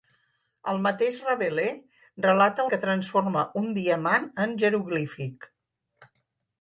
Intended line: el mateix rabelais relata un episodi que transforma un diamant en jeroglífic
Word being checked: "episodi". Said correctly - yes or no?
no